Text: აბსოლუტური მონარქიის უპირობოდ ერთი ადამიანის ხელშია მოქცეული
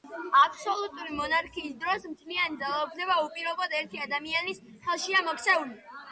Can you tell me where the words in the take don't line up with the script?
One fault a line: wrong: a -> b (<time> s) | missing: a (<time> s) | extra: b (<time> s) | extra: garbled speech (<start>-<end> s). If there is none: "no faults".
extra: დროს მთლიანი ძალაუფლება (1.8 s)